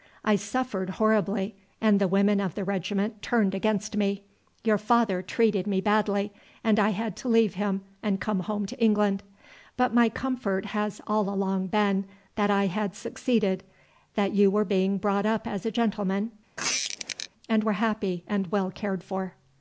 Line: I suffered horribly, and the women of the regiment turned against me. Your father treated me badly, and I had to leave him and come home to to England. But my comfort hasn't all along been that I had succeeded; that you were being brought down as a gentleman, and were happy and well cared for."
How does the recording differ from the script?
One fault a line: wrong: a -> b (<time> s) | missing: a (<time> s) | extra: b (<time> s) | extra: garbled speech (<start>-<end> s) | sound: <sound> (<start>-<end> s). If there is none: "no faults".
missing: to (8.8 s)
wrong: hasn't -> has (10.7 s)
wrong: down -> up (15.2 s)
sound: squeak (16.6-17.3 s)